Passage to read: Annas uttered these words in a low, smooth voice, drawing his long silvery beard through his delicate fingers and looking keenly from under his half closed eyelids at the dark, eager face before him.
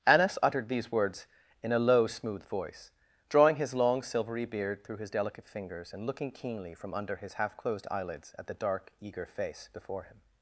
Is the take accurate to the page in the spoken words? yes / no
yes